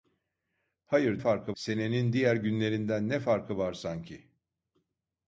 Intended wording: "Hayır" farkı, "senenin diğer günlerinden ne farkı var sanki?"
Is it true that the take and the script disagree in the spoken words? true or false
false